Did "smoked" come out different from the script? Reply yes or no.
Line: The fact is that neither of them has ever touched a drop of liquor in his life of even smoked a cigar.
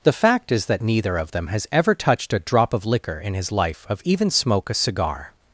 yes